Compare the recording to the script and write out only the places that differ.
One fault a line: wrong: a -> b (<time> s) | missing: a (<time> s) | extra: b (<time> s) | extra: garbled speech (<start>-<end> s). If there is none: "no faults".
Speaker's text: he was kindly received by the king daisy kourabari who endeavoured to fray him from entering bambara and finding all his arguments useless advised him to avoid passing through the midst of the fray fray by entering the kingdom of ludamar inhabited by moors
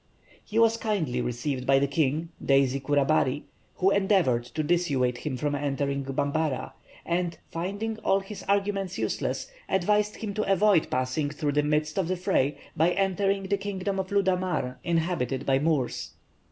wrong: fray -> dissuade (4.6 s)
missing: fray (12.6 s)